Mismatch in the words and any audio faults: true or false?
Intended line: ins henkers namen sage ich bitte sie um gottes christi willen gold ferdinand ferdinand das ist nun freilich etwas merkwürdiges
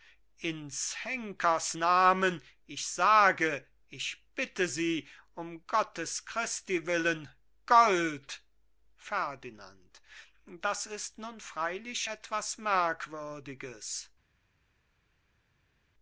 true